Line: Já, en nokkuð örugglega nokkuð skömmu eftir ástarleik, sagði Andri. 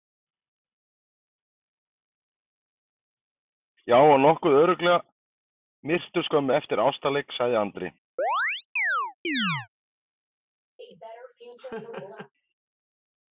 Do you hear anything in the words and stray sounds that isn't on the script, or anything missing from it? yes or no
yes